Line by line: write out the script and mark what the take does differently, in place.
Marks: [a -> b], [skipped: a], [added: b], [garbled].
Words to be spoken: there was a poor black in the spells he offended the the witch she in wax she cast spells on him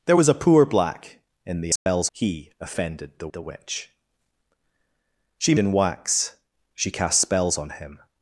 there was a poor black in the spells he offended the the witch she in wax she cast spells on him